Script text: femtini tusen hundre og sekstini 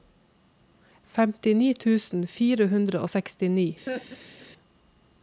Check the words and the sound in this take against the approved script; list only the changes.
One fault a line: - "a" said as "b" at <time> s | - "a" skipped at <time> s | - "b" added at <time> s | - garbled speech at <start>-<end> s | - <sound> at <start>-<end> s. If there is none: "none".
- "fire" added at 2.4 s
- laugh at 3.9-4.5 s